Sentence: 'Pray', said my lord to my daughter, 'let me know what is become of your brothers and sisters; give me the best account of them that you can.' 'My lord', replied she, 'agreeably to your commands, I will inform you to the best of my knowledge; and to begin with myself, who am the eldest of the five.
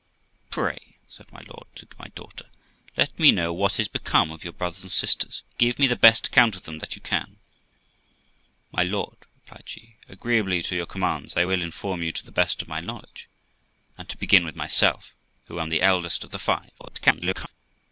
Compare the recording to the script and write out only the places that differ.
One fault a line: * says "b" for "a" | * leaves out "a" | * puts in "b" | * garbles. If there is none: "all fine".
* garbles